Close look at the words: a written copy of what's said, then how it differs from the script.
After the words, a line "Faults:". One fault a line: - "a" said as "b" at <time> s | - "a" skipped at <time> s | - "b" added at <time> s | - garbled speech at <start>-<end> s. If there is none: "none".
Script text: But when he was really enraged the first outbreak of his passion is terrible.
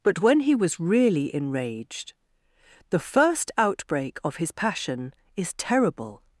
But when he was really enraged the first outbreak of his passion is terrible.
Faults:
none